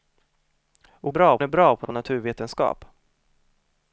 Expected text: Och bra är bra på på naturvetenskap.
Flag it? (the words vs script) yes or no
no